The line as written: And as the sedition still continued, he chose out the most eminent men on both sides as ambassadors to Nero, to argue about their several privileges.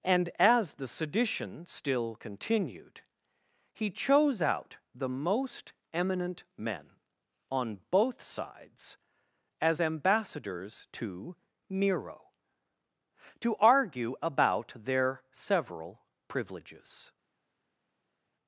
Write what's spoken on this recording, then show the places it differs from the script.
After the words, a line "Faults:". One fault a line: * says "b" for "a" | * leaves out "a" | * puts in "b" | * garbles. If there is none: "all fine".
And as the sedition still continued, he chose out the most eminent men on both sides as ambassadors to Nero, to argue about their several privileges.
Faults:
all fine